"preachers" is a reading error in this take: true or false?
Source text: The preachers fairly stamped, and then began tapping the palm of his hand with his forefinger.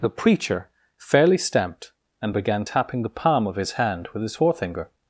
true